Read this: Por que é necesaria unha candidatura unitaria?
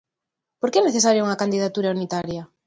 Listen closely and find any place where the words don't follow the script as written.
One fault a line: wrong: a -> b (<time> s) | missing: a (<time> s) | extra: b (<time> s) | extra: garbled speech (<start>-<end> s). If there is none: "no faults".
no faults